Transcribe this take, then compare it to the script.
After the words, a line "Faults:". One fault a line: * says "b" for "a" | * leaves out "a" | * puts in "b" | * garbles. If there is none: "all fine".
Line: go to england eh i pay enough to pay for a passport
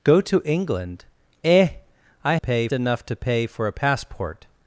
go to england eh i pay enough to pay for a passport
Faults:
all fine